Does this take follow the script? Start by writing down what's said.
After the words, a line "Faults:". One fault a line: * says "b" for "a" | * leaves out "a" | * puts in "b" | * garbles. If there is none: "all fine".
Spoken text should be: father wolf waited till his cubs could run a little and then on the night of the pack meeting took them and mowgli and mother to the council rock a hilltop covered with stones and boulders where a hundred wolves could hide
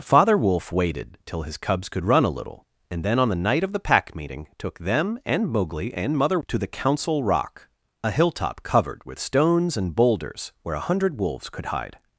father wolf waited till his cubs could run a little and then on the night of the pack meeting took them and mowgli and mother to the council rock a hilltop covered with stones and boulders where a hundred wolves could hide
Faults:
all fine